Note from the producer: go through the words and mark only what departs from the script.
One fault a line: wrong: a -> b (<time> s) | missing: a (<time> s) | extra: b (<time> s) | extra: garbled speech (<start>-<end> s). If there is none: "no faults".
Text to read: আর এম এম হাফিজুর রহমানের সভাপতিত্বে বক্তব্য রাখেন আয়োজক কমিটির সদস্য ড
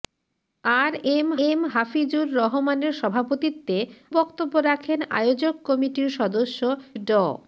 no faults